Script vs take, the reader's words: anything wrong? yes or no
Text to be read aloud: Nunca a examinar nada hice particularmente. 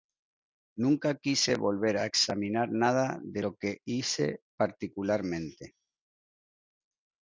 yes